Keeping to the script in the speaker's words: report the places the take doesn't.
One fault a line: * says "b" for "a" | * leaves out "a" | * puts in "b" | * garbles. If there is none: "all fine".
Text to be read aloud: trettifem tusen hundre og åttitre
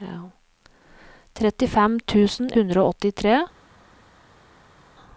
all fine